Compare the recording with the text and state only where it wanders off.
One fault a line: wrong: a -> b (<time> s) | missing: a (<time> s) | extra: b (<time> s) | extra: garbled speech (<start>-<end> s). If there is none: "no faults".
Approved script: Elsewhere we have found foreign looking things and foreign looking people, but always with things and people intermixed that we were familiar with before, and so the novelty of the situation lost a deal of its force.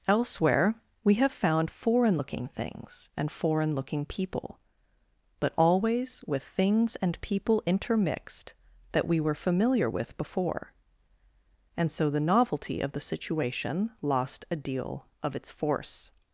no faults